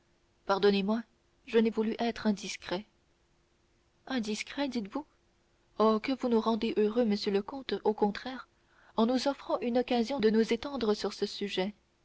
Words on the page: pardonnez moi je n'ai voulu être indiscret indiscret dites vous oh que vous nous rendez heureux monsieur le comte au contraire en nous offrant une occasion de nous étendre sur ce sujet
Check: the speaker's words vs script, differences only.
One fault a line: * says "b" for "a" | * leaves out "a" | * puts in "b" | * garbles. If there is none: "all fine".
all fine